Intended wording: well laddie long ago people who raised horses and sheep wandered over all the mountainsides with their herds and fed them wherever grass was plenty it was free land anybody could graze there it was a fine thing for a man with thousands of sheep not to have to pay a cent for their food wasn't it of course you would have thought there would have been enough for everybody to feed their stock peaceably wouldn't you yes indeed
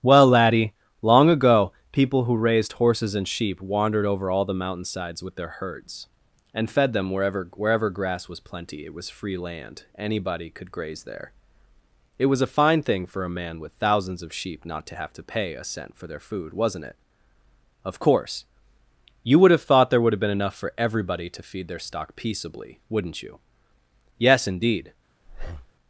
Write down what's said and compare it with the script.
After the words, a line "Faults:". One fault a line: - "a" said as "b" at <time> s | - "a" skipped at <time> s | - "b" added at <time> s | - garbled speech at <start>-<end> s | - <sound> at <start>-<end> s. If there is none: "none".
well laddie long ago people who raised horses and sheep wandered over all the mountainsides with their herds and fed them wherever wherever grass was plenty it was free land anybody could graze there it was a fine thing for a man with thousands of sheep not to have to pay a cent for their food wasn't it of course you would have thought there would have been enough for everybody to feed their stock peaceably wouldn't you yes indeed
Faults:
- "wherever" added at 7.5 s
- breath at 25.3-25.7 s